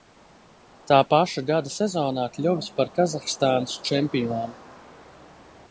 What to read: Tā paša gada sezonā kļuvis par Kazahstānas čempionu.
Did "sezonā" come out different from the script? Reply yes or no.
no